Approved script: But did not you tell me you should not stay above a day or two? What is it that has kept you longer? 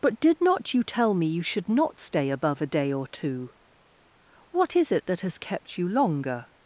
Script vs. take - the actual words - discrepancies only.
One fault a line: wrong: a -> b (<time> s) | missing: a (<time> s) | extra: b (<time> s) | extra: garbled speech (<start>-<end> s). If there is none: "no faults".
no faults